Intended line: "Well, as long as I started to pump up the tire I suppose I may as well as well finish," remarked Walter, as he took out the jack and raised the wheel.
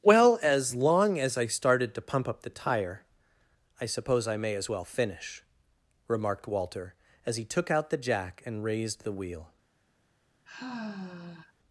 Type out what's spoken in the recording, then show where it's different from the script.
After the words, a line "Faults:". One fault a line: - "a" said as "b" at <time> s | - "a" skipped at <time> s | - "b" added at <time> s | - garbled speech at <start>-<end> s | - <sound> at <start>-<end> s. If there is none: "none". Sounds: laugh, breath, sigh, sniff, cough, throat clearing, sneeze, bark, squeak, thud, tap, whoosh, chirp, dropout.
"Well, as long as I started to pump up the tire I suppose I may as well finish," remarked Walter, as he took out the jack and raised the wheel.
Faults:
- "as well" skipped at 4.9 s
- sigh at 10.5-11.5 s